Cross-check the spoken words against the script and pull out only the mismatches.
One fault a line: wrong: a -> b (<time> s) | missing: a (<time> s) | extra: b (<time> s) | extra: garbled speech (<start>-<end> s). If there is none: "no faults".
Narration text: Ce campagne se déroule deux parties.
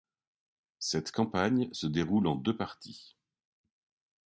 wrong: Ce -> Cette (0.8 s)
extra: en (2.3 s)